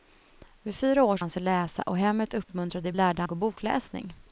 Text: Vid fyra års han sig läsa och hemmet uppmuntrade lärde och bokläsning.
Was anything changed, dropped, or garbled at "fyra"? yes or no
no